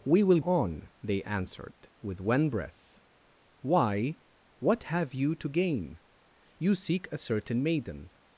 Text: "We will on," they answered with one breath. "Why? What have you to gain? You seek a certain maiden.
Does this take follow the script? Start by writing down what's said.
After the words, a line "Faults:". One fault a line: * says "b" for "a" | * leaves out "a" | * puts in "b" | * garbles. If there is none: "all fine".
"We will on," they answered with one breath. "Why? What have you to gain? You seek a certain maiden.
Faults:
all fine